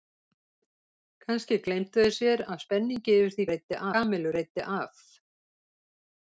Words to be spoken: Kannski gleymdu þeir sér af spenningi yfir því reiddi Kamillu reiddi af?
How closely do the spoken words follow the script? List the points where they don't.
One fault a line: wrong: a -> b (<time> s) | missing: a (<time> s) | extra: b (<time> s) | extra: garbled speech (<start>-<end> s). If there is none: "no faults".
no faults